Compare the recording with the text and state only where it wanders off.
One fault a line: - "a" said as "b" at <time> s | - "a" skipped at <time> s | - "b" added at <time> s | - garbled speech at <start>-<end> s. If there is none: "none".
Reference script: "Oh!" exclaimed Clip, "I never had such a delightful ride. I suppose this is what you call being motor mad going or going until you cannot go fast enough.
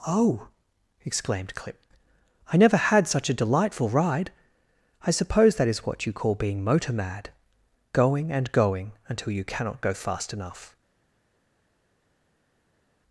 - "this" said as "that" at 5.5 s
- "or" said as "and" at 8.3 s